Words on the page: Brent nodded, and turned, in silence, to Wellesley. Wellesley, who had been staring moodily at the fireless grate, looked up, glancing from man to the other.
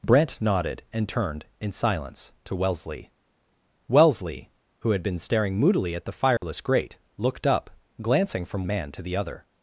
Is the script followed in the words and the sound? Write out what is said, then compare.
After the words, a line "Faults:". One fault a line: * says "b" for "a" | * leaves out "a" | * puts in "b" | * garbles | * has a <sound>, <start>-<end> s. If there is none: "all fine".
Brent nodded, and turned, in silence, to Wellesley. Wellesley, who had been staring moodily at the fireless grate, looked up, glancing from man to the other.
Faults:
* has a dropout, 6.4-6.4 s